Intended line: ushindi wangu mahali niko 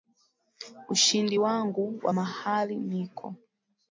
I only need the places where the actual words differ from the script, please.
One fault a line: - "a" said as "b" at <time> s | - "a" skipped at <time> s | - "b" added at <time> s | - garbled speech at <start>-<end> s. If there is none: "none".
- "wa" added at 2.0 s